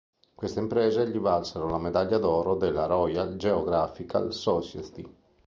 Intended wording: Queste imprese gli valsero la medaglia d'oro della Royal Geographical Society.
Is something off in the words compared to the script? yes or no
no